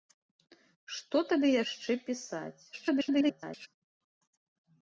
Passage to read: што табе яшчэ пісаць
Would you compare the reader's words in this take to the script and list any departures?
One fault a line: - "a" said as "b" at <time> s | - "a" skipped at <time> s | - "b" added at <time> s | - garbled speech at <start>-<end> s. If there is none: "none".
- garbled speech at 2.7-3.7 s